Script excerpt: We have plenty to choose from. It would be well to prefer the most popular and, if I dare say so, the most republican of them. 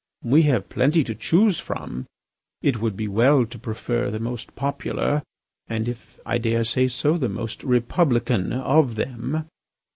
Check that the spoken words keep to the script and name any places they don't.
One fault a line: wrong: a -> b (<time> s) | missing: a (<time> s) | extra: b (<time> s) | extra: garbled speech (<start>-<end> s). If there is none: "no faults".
no faults